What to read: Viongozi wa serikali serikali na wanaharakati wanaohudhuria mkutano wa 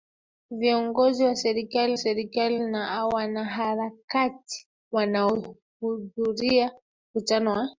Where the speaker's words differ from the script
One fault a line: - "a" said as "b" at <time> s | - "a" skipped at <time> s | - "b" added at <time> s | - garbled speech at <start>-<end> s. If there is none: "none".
none